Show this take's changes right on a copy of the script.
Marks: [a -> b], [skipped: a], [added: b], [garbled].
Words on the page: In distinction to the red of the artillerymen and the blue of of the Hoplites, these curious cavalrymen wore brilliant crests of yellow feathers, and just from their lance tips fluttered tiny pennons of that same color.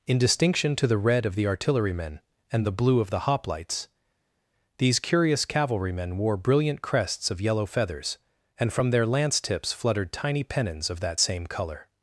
In distinction to the red of the artillerymen and the blue of [skipped: of] the Hoplites, these curious cavalrymen wore brilliant crests of yellow feathers, and [skipped: just] from their lance tips fluttered tiny pennons of that same color.